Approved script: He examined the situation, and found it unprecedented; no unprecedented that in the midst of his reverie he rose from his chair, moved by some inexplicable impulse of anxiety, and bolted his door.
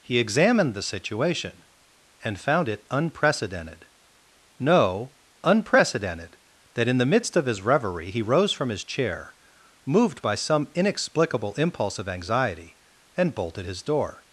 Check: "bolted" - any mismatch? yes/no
no